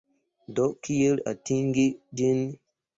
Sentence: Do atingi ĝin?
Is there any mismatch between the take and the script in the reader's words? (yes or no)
yes